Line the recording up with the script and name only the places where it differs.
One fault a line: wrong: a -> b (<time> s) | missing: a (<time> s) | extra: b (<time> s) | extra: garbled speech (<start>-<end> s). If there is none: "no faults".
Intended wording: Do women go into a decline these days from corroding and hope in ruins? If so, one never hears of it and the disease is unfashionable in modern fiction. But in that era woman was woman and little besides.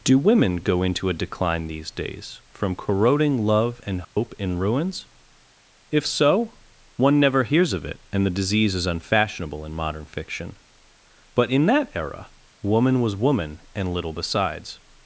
extra: love (3.4 s)